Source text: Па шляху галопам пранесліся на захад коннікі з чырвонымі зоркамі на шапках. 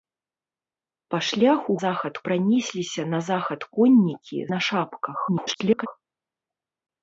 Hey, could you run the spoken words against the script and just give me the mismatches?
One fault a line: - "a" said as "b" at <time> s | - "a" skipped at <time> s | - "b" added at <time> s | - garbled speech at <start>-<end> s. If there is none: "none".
- "галопам" said as "захад" at 1.8 s
- "з чырвонымі зоркамі" skipped at 4.4 s
- garbled speech at 5.3-5.9 s